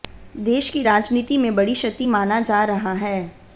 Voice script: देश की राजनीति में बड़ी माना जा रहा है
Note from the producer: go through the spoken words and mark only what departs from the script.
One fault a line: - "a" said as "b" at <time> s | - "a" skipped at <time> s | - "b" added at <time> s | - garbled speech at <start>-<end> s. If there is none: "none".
- "क्षति" added at 1.7 s